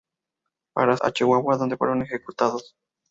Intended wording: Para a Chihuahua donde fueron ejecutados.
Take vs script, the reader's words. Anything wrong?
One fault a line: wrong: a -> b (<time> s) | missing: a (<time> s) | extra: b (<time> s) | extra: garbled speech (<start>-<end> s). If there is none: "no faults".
no faults